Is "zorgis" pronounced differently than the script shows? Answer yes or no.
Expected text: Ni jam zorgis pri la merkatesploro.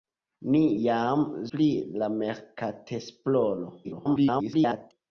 yes